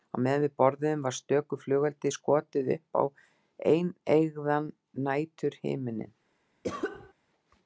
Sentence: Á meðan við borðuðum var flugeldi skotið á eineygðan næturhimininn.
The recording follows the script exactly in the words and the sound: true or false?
false